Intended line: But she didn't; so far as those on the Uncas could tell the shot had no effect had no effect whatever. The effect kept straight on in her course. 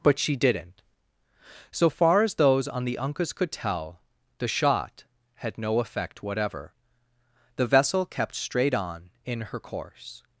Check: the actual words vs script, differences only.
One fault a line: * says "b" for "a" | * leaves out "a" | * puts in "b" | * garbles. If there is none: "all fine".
* leaves out "had no effect"
* says "vessel" for "effect"